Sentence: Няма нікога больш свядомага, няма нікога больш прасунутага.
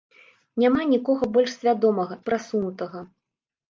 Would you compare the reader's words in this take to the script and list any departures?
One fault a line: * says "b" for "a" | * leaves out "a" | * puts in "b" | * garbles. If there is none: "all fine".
* leaves out "няма нікога больш"